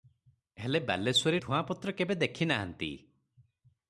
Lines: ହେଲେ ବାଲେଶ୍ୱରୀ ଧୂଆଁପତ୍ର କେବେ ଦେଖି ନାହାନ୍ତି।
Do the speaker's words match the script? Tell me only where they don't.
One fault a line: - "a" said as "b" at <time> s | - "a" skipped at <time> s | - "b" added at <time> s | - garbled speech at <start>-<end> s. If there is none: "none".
none